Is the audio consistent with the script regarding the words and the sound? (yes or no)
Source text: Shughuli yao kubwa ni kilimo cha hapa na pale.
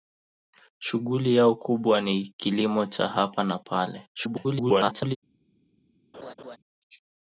no